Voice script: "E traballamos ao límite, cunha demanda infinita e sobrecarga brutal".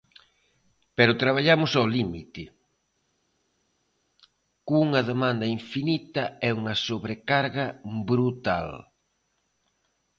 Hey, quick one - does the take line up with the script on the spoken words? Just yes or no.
no